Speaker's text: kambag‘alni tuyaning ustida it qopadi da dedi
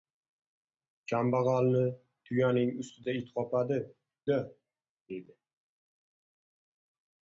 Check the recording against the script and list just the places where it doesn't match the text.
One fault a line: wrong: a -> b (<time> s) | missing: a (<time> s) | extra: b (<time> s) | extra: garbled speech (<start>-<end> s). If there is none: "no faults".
no faults